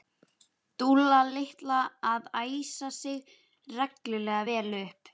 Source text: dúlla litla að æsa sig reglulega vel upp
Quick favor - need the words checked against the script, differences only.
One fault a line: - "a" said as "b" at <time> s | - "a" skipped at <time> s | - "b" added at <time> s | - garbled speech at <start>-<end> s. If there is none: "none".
none